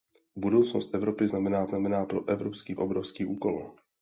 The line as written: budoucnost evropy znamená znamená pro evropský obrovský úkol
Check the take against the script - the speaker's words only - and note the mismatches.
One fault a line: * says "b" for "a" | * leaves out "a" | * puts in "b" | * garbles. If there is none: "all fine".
all fine